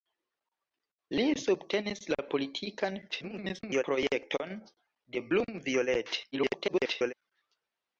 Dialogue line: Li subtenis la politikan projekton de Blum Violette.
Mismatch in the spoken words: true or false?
true